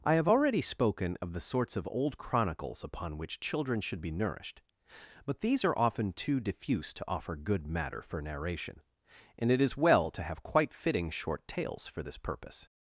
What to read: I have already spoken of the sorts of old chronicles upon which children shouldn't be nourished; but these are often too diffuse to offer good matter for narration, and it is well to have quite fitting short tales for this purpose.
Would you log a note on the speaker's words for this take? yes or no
yes